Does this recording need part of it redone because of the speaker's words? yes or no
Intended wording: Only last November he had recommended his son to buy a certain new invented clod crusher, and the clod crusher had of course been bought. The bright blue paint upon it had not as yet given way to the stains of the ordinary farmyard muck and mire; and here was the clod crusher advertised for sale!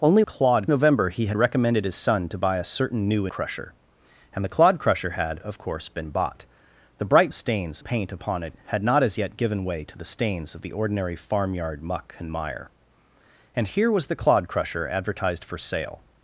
yes